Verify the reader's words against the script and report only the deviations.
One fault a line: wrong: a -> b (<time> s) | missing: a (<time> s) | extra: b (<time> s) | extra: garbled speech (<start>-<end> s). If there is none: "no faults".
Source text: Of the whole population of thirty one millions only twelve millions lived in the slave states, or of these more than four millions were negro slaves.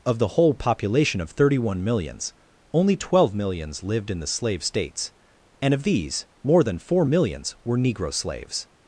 wrong: or -> and (5.6 s)